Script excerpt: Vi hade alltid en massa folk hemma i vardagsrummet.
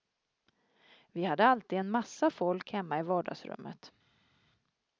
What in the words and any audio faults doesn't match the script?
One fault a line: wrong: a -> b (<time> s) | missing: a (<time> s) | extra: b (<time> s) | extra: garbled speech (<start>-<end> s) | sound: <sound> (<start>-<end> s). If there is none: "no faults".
no faults